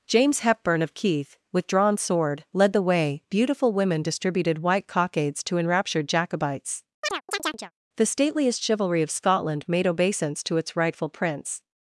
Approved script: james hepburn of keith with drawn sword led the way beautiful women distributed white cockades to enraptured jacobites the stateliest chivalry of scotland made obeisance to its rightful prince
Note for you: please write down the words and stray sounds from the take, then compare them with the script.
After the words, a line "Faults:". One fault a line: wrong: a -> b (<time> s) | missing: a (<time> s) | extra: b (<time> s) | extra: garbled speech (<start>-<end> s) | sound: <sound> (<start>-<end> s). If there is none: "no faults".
james hepburn of keith with drawn sword led the way beautiful women distributed white cockades to enraptured jacobites the stateliest chivalry of scotland made obeisance to its rightful prince
Faults:
sound: chirp (7.0-7.7 s)